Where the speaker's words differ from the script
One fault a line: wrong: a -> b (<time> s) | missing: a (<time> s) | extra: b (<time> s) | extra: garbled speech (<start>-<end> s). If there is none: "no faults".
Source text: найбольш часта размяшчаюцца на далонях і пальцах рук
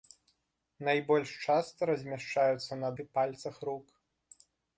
missing: далонях (2.9 s)